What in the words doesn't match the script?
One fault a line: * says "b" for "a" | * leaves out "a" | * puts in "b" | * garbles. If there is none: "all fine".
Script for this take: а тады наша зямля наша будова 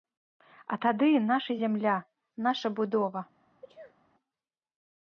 all fine